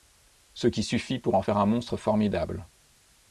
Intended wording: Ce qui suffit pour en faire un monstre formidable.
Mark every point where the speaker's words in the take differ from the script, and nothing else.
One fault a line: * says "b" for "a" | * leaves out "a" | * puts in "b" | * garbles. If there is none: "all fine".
all fine